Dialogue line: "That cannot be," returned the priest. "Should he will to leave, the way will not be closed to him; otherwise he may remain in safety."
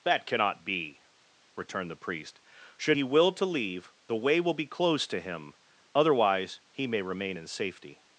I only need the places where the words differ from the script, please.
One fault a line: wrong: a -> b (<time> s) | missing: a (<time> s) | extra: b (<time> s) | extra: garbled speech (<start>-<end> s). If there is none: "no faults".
missing: not (4.5 s)